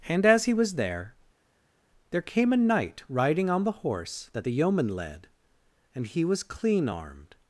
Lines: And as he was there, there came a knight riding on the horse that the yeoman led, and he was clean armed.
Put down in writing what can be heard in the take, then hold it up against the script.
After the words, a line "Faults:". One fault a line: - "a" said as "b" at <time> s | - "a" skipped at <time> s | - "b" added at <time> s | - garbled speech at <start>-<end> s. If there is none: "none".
And as he was there, there came a knight riding on the horse that the yeoman led, and he was clean armed.
Faults:
none